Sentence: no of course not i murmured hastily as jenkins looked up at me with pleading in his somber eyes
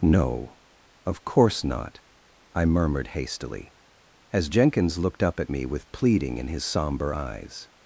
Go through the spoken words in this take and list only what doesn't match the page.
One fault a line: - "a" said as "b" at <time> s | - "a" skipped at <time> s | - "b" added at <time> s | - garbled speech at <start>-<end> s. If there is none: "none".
none